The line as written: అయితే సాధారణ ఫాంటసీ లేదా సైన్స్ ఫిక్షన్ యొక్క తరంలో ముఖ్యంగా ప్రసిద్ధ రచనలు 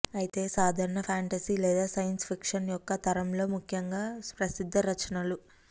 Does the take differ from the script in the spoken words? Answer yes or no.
no